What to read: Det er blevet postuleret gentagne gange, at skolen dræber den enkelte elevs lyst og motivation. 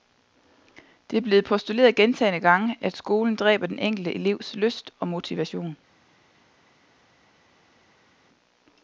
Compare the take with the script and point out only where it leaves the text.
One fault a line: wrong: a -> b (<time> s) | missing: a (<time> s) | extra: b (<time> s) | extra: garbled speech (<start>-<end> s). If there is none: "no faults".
no faults